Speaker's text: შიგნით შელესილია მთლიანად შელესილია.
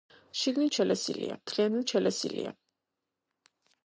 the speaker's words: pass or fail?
pass